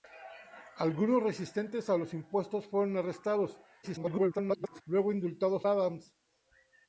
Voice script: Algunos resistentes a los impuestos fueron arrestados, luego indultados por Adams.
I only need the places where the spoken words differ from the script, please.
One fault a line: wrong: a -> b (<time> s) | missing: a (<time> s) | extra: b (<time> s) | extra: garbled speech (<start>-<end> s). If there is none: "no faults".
extra: garbled speech (3.8-4.8 s)
missing: por (5.6 s)